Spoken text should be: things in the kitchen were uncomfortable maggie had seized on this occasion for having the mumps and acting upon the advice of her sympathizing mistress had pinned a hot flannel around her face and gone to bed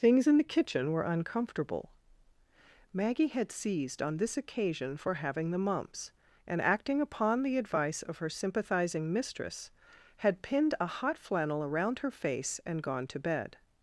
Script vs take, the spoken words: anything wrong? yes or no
no